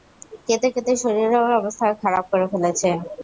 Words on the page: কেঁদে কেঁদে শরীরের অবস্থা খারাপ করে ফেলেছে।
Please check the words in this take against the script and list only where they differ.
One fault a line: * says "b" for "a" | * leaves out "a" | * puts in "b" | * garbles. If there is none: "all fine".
all fine